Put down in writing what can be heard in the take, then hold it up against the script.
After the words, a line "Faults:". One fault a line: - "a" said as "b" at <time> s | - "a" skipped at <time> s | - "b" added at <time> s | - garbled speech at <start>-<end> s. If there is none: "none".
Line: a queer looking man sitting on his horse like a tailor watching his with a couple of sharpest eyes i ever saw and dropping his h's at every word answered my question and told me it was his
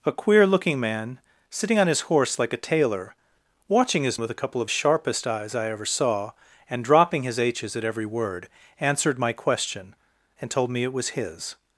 a queer looking man sitting on his horse like a tailor watching his with a couple of sharpest eyes i ever saw and dropping his h's at every word answered my question and told me it was his
Faults:
none